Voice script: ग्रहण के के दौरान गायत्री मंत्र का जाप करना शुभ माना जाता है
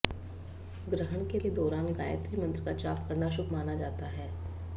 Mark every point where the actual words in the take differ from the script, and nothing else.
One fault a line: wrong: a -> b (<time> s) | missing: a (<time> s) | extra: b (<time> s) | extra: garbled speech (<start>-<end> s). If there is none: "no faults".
no faults